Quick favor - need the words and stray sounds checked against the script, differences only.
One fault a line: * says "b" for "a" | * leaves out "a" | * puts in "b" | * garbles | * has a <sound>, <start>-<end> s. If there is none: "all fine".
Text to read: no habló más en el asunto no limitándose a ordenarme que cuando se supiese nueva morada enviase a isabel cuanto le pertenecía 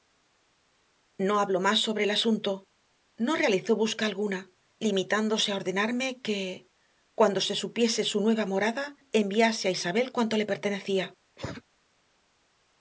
* says "sobre" for "en"
* puts in "realizó busca alguna"
* puts in "su"
* has a cough, 11.4-11.6 s